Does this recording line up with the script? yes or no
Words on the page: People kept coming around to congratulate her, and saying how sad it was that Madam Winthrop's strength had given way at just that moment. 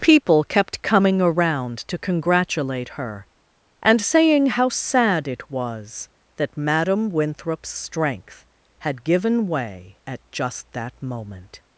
yes